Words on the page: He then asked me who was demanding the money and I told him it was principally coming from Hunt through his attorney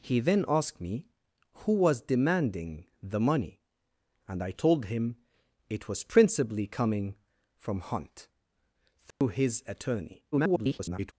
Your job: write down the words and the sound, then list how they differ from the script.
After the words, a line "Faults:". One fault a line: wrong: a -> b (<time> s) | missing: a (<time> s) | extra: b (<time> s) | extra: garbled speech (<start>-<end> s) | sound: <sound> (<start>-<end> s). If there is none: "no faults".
He then asked me who was demanding the money and I told him it was principally coming from Hunt through his attorney [garbled]
Faults:
sound: dropout (9.1-9.2 s)
extra: garbled speech (10.3-11.1 s)